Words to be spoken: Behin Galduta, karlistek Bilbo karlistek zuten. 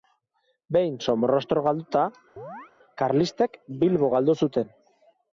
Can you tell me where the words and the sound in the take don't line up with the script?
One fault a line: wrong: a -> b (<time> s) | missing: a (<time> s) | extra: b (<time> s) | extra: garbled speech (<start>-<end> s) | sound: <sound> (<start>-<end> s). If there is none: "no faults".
extra: Somorrostro (1.1 s)
sound: chirp (2.4-2.7 s)
wrong: karlistek -> galdu (4.1 s)